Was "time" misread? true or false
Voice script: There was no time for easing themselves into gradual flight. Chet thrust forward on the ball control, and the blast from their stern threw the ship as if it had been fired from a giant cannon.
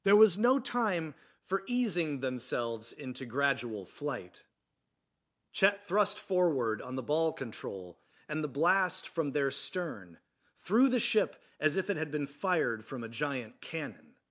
false